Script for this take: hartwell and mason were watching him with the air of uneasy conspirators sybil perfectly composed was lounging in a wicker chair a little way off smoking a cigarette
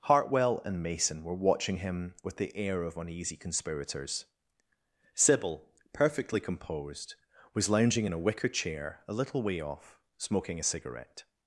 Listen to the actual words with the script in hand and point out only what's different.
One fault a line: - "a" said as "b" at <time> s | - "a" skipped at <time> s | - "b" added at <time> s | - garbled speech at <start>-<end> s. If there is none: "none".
none